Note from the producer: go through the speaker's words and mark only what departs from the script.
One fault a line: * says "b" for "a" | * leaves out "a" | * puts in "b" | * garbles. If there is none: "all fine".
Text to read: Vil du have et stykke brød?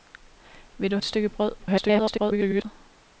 * leaves out "have"
* garbles